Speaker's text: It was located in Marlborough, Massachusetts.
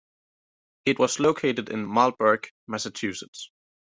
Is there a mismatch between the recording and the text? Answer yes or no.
no